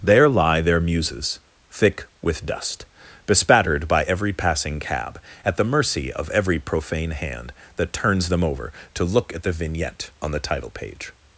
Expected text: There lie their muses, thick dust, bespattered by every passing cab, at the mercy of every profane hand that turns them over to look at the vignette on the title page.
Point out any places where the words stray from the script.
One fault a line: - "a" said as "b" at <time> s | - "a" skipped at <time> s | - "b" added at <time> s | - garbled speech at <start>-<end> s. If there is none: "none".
- "with" added at 2.2 s